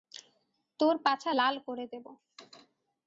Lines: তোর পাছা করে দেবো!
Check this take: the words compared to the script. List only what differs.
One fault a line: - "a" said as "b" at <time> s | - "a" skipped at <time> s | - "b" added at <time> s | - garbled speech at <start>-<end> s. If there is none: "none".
- "লাল" added at 1.3 s